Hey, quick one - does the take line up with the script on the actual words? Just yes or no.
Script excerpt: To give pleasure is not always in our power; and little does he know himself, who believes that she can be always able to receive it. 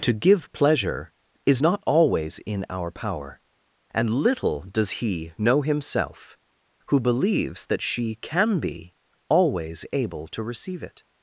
yes